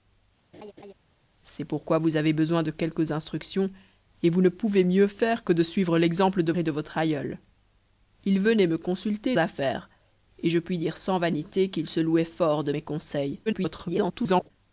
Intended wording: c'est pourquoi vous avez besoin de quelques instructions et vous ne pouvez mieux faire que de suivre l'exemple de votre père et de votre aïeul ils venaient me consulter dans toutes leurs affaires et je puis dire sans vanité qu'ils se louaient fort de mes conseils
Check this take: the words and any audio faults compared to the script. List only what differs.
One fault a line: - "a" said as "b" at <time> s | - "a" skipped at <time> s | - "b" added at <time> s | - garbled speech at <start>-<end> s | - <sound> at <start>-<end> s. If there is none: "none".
- laugh at 0.5-0.9 s
- "votre père" skipped at 6.5 s
- "dans toutes leurs" skipped at 9.4 s
- garbled speech at 13.5-14.5 s